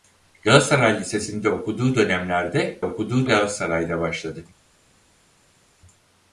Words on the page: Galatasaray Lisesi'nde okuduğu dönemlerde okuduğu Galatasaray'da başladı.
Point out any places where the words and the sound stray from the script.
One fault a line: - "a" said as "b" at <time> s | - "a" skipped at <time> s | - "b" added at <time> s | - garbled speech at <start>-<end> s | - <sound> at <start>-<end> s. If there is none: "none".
none